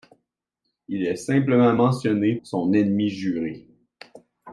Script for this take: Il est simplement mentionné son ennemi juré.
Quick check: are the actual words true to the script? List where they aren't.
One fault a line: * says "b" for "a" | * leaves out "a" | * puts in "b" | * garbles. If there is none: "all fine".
all fine